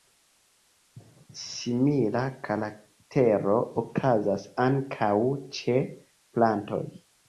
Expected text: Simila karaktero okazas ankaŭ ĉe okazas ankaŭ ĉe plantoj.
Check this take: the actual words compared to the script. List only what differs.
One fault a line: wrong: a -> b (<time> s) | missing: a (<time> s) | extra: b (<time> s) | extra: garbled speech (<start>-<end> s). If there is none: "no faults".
missing: okazas ankaŭ ĉe (5.8 s)